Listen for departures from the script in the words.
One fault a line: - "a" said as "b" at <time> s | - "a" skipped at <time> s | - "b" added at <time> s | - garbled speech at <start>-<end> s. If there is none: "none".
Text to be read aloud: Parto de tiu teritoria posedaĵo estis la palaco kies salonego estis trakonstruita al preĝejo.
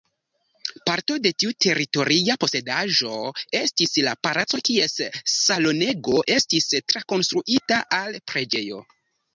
none